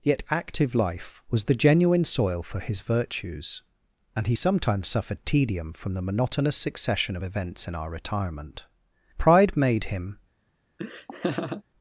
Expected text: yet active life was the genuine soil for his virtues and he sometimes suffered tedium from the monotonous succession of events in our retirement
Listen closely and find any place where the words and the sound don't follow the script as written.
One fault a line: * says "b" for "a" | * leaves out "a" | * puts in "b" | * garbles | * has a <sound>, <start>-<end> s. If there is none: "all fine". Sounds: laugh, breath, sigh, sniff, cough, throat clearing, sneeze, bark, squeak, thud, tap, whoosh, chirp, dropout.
* puts in "pride made him"
* has a laugh, 10.8-11.6 s